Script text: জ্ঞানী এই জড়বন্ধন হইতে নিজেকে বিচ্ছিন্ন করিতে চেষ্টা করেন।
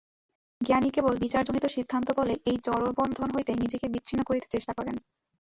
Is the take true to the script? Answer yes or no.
no